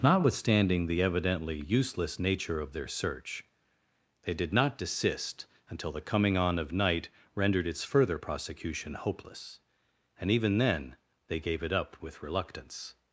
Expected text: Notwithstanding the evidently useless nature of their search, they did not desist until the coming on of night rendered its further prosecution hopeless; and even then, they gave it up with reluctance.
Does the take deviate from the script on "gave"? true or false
false